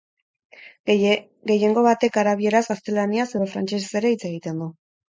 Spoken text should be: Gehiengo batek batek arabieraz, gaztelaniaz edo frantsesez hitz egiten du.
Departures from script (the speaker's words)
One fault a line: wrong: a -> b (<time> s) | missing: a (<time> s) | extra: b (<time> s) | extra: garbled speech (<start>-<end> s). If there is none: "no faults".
missing: batek (2.2 s)
extra: ere (4.1 s)